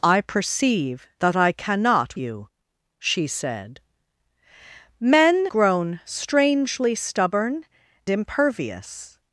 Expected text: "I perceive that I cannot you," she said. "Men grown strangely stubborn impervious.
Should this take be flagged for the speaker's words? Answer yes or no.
no